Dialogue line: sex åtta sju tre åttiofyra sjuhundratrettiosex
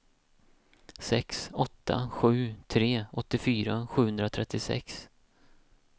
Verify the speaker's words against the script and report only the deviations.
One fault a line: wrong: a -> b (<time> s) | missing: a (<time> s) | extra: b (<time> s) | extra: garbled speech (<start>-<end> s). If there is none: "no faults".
no faults